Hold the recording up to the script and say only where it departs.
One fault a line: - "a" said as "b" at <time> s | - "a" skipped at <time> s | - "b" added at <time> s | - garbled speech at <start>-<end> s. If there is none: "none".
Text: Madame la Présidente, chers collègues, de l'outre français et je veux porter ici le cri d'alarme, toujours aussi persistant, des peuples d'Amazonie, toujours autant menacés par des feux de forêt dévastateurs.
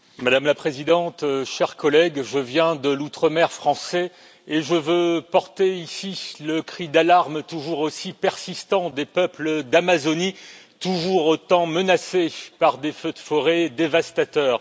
- "je viens" added at 2.2 s
- "mer" added at 3.3 s